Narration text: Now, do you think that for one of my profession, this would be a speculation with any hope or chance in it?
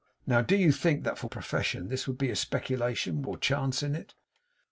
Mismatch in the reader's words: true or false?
true